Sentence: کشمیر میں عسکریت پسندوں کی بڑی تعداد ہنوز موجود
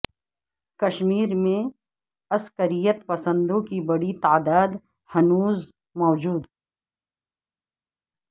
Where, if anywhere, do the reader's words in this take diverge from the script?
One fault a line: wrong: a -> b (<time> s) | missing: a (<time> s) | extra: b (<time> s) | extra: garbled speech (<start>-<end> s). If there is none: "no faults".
no faults